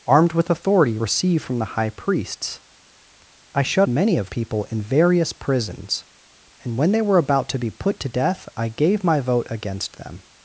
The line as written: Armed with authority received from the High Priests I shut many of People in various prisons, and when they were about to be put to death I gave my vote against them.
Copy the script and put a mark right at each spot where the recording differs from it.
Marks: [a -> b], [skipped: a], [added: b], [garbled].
Armed with authority received from the High Priests I shut many of People in various prisons, and when they were about to be put to death I gave my vote against them.